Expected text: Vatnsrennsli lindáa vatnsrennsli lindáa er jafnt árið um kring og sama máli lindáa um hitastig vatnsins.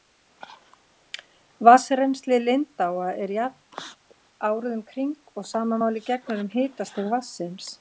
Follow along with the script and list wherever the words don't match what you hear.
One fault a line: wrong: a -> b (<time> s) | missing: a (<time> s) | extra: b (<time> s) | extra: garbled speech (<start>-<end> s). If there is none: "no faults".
missing: vatnsrennsli lindáa (3.1 s)
wrong: lindáa -> gegnir (6.1 s)